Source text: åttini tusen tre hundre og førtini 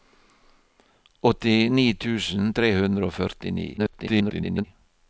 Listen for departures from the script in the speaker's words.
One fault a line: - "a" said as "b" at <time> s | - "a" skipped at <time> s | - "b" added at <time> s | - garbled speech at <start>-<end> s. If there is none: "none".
- garbled speech at 3.8-4.6 s